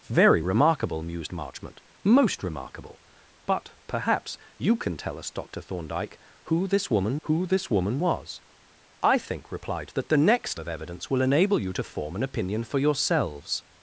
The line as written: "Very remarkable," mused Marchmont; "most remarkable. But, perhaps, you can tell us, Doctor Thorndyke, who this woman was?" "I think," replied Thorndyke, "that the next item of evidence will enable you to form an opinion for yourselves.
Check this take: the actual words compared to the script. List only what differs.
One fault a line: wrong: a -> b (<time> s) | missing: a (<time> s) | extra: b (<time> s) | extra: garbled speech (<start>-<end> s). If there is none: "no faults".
extra: who this woman (7.2 s)
missing: Thorndyke (9.9 s)
missing: item (10.6 s)